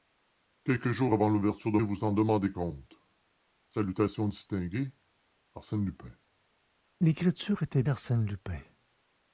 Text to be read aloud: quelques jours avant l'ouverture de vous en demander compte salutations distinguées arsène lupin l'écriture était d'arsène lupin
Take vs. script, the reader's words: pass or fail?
pass